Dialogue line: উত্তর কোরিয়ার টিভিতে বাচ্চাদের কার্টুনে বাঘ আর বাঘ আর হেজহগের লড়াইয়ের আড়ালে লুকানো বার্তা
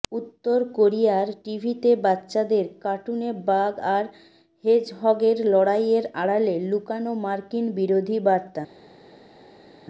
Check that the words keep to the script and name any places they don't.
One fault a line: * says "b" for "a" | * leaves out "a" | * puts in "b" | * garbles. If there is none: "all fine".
* leaves out "বাঘ আর"
* puts in "মার্কিন বিরোধী"